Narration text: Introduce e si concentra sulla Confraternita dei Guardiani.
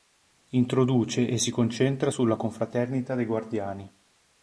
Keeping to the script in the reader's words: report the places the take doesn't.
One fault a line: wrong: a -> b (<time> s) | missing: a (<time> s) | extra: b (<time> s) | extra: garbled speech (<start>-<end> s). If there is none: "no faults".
no faults